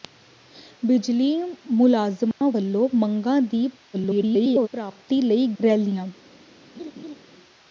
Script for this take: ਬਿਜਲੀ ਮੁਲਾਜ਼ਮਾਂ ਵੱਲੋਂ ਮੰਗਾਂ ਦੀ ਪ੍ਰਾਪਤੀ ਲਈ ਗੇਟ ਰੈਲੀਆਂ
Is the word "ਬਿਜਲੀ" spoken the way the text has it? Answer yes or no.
yes